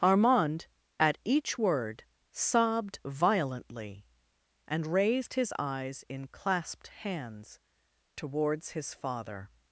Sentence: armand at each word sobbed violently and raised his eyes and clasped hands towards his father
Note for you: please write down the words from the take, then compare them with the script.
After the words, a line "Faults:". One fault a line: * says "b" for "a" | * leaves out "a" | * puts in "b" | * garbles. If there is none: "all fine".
armand at each word sobbed violently and raised his eyes in clasped hands towards his father
Faults:
* says "in" for "and"